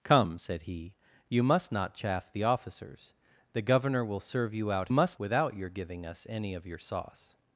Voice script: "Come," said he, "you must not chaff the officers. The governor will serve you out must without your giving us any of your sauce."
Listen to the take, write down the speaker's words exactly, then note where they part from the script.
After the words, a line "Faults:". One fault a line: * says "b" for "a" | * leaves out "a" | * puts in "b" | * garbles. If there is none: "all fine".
"Come," said he, "you must not chaff the officers. The governor will serve you out must without your giving us any of your sauce."
Faults:
all fine